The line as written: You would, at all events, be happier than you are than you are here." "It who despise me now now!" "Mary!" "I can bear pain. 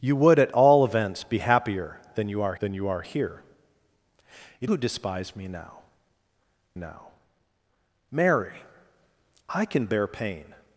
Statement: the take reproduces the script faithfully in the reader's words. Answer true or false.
true